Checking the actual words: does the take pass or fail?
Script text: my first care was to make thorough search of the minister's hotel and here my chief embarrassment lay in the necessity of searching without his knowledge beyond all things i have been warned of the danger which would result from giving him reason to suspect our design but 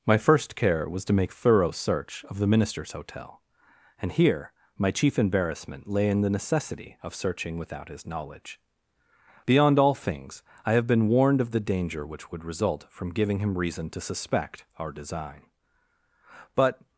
pass